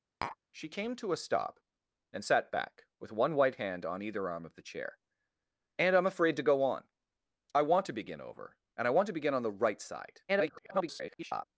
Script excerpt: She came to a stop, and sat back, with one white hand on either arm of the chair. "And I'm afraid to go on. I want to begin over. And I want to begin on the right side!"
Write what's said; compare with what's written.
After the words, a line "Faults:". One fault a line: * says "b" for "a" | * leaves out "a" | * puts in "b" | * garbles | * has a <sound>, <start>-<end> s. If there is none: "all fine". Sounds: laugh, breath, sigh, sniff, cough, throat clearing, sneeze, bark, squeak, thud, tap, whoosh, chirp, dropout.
She came to a stop, and sat back, with one white hand on either arm of the chair. "And I'm afraid to go on. I want to begin over. And I want to begin on the right side!" [garbled]
Faults:
* has a tap, 0.2-0.4 s
* garbles